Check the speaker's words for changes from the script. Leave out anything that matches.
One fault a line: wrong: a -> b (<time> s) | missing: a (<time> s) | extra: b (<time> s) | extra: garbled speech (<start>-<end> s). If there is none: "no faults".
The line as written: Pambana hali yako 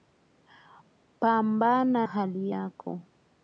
no faults